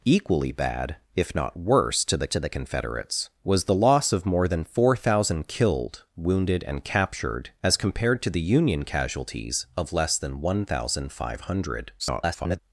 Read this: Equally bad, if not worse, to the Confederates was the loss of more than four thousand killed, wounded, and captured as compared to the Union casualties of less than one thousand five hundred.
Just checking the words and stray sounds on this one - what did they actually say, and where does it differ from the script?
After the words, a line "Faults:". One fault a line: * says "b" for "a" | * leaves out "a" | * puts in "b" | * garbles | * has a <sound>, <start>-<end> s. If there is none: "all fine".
Equally bad, if not worse, to the to the Confederates was the loss of more than four thousand killed, wounded, and captured as compared to the Union casualties of less than one thousand five hundred. [garbled]
Faults:
* puts in "to the"
* garbles